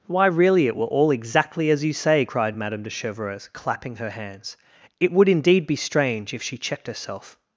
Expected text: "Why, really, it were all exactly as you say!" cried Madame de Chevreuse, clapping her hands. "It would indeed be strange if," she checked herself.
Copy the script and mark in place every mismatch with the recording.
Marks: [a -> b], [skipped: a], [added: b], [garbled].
"Why, really, it were all exactly as you say!" cried Madame de Chevreuse, clapping her hands. "It would indeed be strange if," she checked herself.